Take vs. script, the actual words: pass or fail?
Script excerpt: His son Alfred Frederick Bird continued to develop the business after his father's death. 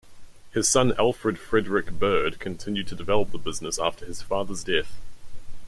pass